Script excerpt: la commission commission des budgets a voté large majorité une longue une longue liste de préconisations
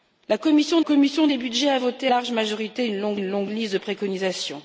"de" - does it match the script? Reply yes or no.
yes